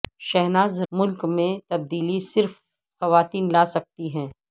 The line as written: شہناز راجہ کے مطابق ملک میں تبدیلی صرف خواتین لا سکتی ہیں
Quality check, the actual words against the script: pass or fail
fail